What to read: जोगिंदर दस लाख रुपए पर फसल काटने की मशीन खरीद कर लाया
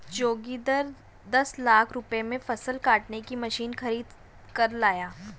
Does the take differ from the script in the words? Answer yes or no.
yes